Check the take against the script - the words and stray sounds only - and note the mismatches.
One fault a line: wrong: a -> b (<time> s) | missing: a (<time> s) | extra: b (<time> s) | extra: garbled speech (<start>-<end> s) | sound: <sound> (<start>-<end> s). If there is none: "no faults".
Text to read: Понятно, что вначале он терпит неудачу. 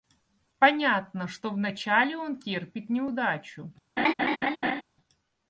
sound: laugh (4.0-4.8 s)